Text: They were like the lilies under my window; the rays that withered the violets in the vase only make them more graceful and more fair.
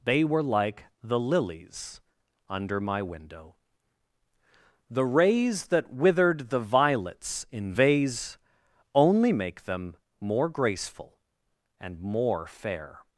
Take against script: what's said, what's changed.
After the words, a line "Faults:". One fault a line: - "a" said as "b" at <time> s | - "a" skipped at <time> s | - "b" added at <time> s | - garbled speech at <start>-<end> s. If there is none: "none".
They were like the lilies under my window; the rays that withered the violets in vase only make them more graceful and more fair.
Faults:
- "the" skipped at 7.7 s